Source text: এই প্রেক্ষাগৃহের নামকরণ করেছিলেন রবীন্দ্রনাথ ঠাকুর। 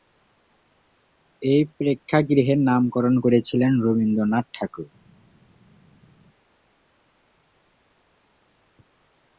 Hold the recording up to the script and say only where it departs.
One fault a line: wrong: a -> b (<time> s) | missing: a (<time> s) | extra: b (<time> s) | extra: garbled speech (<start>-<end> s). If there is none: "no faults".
no faults